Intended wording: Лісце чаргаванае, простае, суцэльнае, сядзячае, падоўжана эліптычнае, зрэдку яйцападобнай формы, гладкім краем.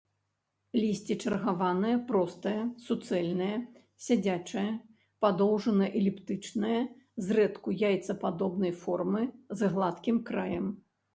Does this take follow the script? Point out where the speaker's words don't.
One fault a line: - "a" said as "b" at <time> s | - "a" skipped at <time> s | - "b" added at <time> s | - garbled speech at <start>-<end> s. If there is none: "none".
- "з" added at 9.6 s